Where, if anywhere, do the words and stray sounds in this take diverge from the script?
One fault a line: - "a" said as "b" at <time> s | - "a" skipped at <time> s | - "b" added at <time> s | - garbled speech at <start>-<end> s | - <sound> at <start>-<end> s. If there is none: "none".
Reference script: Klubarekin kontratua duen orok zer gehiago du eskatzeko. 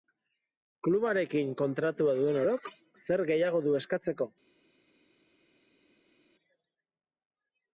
none